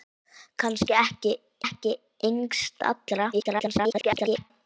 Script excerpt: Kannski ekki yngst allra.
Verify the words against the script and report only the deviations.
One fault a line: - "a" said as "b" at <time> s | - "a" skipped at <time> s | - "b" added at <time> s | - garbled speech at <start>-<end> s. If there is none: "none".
- "ekki" added at 1.6 s
- garbled speech at 3.3-4.5 s